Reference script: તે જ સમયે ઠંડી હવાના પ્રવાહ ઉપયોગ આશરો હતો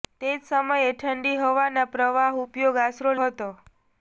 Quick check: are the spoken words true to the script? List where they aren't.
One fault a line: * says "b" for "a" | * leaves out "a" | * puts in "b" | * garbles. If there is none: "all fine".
all fine